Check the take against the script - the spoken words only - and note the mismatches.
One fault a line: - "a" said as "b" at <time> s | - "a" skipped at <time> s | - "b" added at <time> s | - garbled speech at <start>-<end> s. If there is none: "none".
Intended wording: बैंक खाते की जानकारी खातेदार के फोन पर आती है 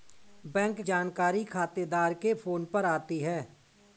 - "खाते की" skipped at 0.8 s